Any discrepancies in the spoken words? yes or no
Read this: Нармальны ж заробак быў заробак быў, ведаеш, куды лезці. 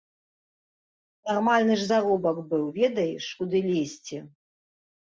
yes